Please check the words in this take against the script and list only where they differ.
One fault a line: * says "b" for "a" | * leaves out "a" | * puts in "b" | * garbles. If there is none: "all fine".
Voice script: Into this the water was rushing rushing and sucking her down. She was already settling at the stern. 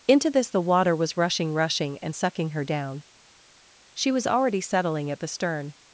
all fine